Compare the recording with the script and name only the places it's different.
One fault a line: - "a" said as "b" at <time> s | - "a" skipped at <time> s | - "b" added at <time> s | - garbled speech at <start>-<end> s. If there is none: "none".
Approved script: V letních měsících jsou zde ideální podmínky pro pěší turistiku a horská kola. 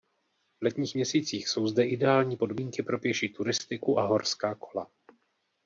none